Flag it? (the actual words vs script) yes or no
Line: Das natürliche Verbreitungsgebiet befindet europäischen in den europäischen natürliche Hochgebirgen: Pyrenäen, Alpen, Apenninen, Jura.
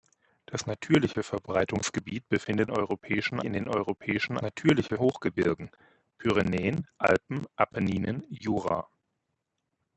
no